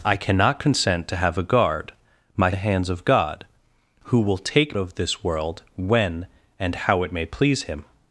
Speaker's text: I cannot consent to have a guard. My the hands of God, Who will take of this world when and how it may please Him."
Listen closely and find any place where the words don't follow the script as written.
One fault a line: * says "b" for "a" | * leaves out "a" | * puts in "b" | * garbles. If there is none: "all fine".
all fine